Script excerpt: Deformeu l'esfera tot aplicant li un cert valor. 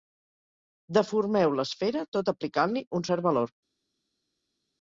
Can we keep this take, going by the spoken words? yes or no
yes